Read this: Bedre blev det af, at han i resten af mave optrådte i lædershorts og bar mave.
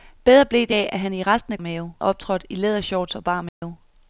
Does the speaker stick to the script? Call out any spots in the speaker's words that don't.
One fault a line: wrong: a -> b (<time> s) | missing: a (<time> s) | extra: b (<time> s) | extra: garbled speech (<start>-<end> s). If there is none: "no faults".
no faults